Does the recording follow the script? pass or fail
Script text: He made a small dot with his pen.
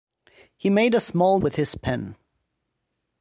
fail